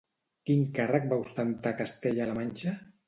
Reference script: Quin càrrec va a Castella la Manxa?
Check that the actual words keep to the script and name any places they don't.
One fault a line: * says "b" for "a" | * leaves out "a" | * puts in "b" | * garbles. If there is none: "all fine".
* puts in "ostentar"